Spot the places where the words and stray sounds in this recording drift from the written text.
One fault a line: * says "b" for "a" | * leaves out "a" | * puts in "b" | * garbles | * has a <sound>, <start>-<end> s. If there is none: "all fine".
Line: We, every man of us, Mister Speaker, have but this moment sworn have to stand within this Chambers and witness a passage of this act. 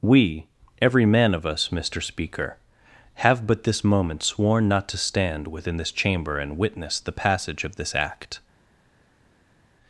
* says "not" for "have"
* says "Chamber" for "Chambers"
* says "the" for "a"